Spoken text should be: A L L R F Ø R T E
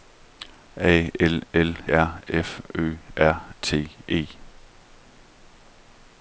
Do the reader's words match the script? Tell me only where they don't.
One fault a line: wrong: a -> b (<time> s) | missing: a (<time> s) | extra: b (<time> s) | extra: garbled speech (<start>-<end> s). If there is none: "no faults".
no faults